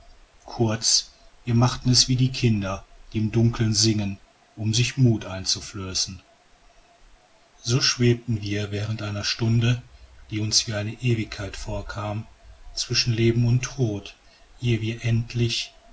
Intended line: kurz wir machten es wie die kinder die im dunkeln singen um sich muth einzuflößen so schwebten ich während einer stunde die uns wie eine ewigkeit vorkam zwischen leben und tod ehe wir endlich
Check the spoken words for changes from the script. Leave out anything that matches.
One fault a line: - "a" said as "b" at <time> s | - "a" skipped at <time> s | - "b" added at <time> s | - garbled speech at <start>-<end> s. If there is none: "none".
- "ich" said as "wir" at 8.4 s